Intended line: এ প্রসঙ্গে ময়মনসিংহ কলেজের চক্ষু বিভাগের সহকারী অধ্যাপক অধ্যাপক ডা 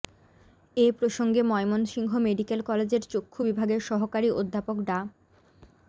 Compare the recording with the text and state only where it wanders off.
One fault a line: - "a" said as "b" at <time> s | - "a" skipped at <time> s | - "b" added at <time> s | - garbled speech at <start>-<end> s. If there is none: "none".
- "মেডিকেল" added at 2.2 s
- "অধ্যাপক" skipped at 4.8 s